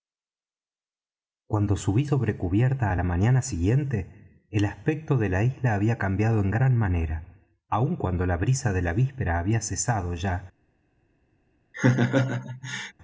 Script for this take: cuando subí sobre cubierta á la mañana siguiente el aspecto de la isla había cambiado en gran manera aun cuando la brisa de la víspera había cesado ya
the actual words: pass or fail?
pass